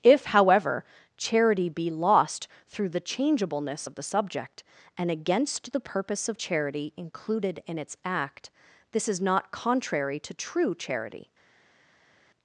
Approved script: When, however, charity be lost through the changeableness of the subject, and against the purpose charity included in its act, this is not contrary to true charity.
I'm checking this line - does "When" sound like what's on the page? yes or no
no